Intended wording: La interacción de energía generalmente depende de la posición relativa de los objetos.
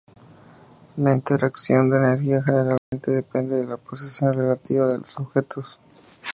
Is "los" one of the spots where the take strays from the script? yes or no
no